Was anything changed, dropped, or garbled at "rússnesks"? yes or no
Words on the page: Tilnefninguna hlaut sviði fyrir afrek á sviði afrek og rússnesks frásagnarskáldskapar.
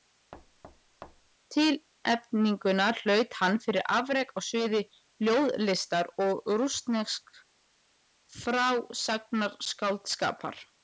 no